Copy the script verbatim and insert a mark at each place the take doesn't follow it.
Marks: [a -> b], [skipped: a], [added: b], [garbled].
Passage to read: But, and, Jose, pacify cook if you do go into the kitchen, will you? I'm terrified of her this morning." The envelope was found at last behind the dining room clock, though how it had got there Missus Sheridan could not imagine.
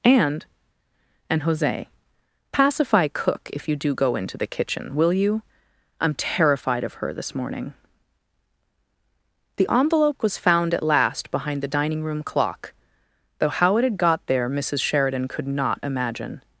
[But, -> And] and, Jose, pacify cook if you do go into the kitchen, will you? I'm terrified of her this morning." The envelope was found at last behind the dining room clock, though how it had got there Missus Sheridan could not imagine.